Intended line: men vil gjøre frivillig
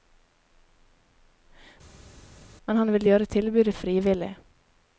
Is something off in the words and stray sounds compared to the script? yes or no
yes